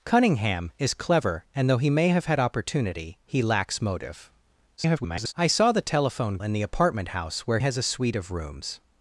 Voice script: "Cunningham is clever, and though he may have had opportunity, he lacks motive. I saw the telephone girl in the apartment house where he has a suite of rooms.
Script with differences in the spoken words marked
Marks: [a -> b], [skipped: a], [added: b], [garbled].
"Cunningham is clever, and though he may have had opportunity, he lacks motive. [garbled] I saw the telephone [skipped: girl] in the apartment house where [skipped: he] has a suite of rooms.